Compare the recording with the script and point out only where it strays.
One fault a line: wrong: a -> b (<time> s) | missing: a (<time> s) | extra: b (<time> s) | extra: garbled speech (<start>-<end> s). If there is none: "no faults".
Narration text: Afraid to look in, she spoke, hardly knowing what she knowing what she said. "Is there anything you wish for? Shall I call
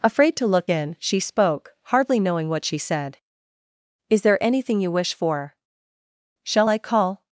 missing: knowing what she (2.8 s)